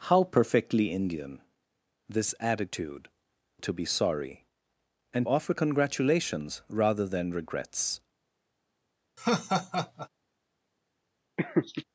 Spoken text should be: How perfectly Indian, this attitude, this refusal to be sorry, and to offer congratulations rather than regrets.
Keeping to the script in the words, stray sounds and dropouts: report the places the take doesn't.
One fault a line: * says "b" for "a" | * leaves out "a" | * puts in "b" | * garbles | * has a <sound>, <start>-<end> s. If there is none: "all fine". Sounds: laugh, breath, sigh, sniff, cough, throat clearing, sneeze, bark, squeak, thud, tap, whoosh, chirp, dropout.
* leaves out "this refusal"
* leaves out "to"
* has a laugh, 9.2-10.1 s
* has a laugh, 11.4-11.8 s